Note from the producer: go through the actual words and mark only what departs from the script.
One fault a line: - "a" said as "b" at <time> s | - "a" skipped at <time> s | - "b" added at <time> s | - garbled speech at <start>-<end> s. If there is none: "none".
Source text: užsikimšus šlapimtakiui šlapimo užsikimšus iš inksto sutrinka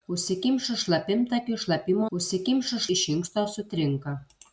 none